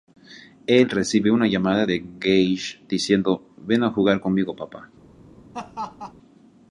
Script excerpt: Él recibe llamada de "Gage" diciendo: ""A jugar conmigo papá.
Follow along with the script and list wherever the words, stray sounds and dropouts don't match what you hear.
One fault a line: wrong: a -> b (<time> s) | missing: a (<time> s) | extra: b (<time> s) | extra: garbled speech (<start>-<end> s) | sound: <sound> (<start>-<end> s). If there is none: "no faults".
extra: una (1.3 s)
extra: Ven (3.6 s)
sound: laugh (5.5-6.1 s)